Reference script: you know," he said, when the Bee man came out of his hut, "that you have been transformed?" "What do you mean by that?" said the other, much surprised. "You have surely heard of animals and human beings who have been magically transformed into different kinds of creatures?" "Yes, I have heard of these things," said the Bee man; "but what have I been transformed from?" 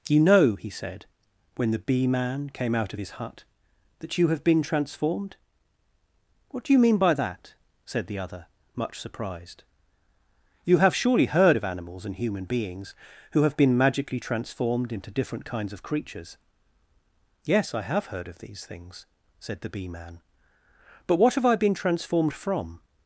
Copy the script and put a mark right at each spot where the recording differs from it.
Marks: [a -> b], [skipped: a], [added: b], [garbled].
you know," he said, when the Bee man came out of his hut, "that you have been transformed?" "What do you mean by that?" said the other, much surprised. "You have surely heard of animals and human beings who have been magically transformed into different kinds of creatures?" "Yes, I have heard of these things," said the Bee man; "but what have I been transformed from?"